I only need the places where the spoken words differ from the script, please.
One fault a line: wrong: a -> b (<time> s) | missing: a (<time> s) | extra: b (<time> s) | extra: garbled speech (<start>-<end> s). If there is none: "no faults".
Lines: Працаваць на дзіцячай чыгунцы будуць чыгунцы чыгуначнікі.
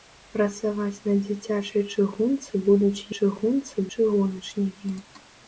no faults